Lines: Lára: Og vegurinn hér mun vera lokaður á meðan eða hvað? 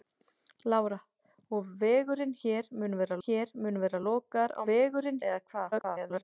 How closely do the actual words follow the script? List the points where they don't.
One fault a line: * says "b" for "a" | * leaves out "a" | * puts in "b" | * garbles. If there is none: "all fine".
* puts in "hér mun vera"
* says "vegurinn" for "meðan"
* garbles